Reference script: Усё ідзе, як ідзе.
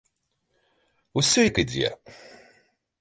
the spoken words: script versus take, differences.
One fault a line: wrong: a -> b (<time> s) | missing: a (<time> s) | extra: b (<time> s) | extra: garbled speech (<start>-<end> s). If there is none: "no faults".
missing: ідзе (1.4 s)